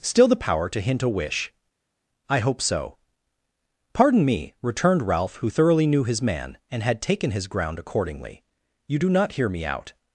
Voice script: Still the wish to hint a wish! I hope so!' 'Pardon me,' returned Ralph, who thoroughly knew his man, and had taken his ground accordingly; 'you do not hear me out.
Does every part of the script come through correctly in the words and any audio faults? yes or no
no